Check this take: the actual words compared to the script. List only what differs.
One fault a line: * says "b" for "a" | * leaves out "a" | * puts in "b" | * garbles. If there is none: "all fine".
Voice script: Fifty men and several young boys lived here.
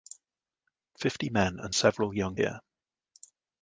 * leaves out "boys lived"